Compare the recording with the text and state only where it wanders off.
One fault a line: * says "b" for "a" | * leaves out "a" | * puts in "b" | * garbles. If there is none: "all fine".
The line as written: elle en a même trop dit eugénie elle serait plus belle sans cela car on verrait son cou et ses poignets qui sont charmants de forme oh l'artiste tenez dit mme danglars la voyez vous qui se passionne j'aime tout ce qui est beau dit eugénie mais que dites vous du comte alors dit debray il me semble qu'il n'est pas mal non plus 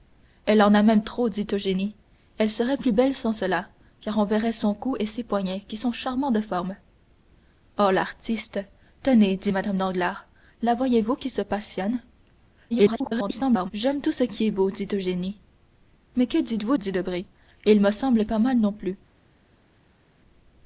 * garbles
* leaves out "du comte alors"
* leaves out "qu'il n'est"